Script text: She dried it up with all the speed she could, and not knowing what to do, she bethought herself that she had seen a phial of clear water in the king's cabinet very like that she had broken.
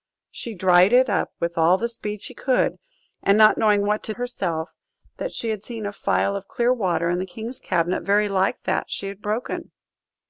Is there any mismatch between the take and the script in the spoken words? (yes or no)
yes